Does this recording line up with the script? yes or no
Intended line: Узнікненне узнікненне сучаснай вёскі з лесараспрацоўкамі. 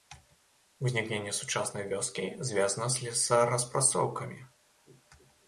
no